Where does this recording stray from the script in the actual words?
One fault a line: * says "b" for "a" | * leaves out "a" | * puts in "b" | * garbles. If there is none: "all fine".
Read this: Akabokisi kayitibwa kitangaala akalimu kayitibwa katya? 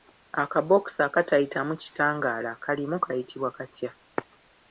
* says "akatayitamu" for "kayitibwa"